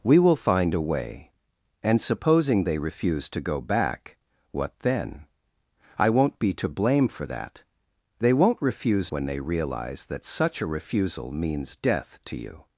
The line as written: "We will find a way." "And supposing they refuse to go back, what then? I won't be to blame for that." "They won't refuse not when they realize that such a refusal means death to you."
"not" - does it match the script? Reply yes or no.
no